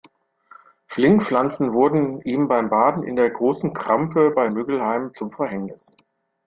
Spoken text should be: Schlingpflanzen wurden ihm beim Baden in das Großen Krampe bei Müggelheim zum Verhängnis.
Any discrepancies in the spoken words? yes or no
yes